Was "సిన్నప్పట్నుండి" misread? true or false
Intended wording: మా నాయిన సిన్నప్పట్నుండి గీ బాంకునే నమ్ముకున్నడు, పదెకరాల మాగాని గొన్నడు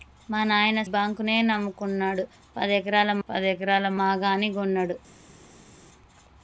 true